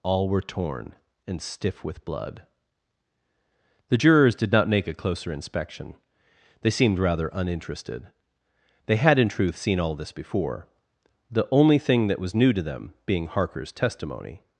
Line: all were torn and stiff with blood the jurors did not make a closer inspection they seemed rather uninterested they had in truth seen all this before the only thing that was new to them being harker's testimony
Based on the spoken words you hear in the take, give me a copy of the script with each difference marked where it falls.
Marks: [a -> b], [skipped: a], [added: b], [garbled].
all were torn and stiff with blood the jurors did not make a closer inspection they seemed rather uninterested they had in truth seen all this before the only thing that was new to them being harker's testimony